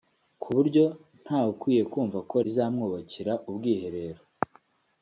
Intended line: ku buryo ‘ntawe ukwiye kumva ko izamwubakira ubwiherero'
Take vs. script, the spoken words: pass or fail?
pass